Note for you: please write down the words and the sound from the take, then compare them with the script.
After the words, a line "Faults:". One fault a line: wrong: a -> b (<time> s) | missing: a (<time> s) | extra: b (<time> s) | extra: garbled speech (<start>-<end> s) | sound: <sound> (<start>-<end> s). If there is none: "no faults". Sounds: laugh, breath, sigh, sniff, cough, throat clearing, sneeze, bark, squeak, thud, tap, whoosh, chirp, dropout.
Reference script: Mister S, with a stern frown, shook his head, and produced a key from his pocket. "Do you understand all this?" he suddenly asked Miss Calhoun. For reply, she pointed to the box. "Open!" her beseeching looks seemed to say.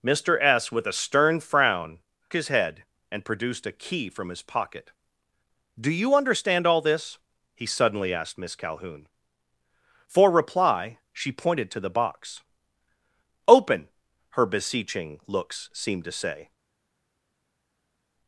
Mister S, with a stern frown, his head, and produced a key from his pocket. "Do you understand all this?" he suddenly asked Miss Calhoun. For reply, she pointed to the box. "Open!" her beseeching looks seemed to say.
Faults:
missing: shook (2.0 s)